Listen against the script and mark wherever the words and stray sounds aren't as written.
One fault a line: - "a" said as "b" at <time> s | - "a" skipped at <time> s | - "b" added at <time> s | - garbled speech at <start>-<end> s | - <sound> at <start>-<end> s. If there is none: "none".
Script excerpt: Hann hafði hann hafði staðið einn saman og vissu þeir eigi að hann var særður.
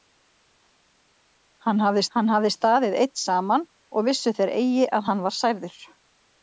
none